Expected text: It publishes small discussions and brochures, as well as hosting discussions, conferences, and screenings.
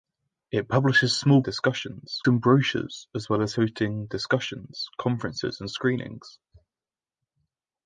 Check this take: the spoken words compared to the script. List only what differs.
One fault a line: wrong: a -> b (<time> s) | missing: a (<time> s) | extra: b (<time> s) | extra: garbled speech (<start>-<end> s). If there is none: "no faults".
no faults